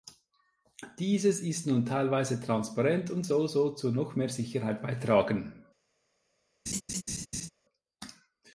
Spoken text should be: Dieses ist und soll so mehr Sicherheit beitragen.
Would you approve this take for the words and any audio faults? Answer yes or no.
no